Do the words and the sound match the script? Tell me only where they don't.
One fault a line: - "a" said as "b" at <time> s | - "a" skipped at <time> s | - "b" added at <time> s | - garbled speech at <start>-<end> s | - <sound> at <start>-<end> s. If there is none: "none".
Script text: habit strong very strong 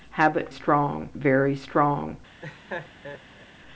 - laugh at 2.4-3.5 s